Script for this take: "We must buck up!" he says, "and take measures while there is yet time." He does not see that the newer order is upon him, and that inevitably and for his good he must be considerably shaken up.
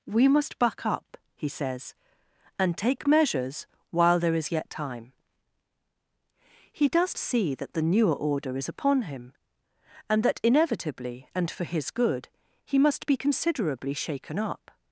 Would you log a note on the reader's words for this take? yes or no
yes